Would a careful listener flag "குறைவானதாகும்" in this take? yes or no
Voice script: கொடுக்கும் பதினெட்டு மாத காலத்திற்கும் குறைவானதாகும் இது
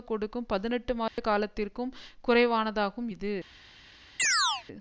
no